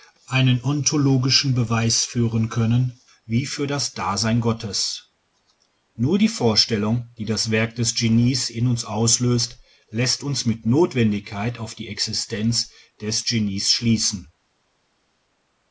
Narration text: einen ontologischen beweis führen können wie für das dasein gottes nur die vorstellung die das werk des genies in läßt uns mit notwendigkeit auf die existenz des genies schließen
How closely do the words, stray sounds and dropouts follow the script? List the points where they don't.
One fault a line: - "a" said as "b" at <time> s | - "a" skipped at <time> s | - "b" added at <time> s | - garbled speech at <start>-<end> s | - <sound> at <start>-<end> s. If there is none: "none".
- "uns auslöst" added at 8.7 s